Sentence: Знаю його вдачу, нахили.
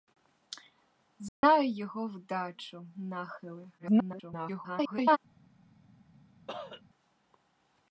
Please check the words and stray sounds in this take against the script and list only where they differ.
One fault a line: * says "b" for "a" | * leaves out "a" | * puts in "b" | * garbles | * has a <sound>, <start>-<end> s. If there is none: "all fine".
* has a dropout, 1.3-1.4 s
* garbles
* has a cough, 6.5-6.8 s